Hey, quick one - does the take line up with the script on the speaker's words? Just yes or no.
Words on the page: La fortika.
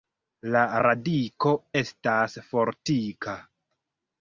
no